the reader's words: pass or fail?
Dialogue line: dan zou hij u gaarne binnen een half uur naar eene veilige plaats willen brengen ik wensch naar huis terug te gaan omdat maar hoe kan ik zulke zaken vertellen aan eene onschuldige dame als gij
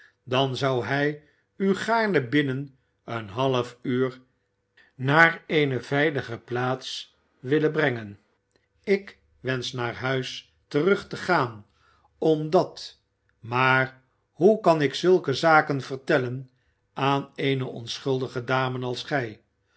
pass